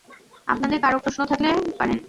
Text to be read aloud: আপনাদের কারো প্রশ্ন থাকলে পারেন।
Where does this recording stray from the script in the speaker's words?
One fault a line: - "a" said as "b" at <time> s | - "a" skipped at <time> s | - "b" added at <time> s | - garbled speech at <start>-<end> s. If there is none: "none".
none